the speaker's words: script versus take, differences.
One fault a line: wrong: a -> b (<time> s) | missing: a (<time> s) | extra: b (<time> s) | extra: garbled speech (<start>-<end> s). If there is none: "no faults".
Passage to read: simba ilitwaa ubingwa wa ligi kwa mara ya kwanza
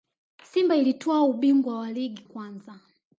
missing: kwa mara ya (2.2 s)